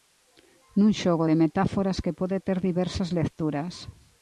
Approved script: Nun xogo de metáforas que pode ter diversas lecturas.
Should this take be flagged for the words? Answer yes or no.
no